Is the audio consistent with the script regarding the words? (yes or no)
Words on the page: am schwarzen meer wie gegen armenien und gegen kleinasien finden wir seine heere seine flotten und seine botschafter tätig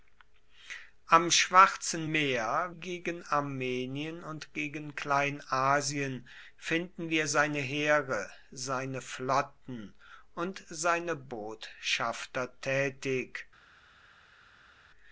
no